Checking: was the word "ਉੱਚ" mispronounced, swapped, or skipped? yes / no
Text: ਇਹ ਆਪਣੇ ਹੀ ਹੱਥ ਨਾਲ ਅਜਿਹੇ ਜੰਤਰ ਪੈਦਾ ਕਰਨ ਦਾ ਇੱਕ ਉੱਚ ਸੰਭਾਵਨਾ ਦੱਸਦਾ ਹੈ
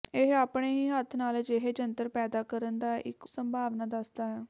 yes